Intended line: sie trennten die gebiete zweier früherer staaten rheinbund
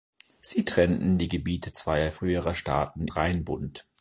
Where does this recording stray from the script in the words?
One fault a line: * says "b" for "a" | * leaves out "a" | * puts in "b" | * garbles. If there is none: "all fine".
all fine